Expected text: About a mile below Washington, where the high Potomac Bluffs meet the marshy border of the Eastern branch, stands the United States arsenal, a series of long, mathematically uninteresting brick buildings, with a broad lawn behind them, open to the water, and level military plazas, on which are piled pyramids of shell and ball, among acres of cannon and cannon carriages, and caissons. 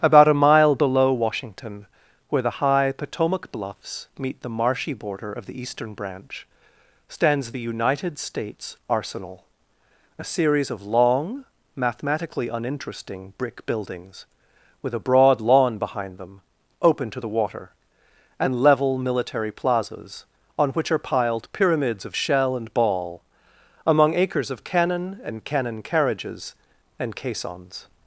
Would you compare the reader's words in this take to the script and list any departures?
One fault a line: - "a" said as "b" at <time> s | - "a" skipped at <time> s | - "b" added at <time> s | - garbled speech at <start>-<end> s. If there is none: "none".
none